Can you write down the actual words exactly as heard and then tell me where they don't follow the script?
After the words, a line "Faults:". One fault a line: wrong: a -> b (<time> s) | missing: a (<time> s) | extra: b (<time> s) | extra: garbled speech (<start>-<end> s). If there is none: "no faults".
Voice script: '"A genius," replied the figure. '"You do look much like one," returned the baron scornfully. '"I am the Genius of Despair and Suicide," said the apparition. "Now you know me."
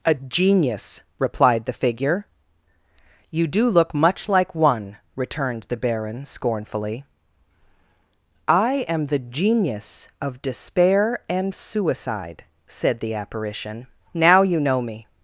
'"A genius," replied the figure. '"You do look much like one," returned the baron scornfully. '"I am the Genius of Despair and Suicide," said the apparition. "Now you know me."
Faults:
no faults